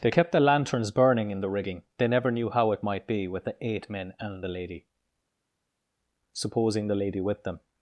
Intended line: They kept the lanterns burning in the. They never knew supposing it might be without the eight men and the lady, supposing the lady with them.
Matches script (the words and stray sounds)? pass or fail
fail